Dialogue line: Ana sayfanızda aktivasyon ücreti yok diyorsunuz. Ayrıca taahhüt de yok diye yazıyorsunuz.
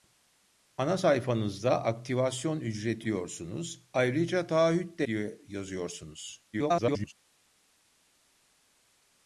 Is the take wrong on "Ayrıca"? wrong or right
right